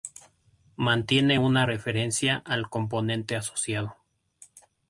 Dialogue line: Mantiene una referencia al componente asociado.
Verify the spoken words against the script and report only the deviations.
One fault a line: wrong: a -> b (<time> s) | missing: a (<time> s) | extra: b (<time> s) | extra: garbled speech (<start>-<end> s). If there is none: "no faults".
no faults